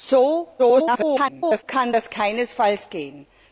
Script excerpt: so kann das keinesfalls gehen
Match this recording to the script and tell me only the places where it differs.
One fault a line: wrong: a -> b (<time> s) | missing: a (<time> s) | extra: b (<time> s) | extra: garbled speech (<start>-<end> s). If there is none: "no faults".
extra: garbled speech (0.6-1.6 s)